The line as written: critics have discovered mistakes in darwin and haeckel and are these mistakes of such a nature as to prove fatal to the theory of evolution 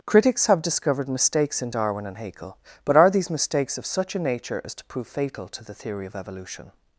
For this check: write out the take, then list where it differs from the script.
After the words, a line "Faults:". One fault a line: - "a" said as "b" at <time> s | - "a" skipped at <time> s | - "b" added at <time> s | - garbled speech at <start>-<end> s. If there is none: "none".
critics have discovered mistakes in darwin and haeckel but are these mistakes of such a nature as to prove fatal to the theory of evolution
Faults:
- "and" said as "but" at 2.8 s